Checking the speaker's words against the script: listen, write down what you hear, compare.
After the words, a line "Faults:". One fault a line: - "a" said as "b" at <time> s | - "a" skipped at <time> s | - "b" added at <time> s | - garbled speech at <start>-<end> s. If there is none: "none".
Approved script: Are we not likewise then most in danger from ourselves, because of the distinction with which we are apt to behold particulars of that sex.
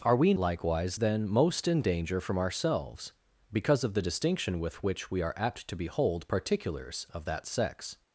Are we likewise then most in danger from ourselves, because of the distinction with which we are apt to behold particulars of that sex.
Faults:
- "not" skipped at 0.3 s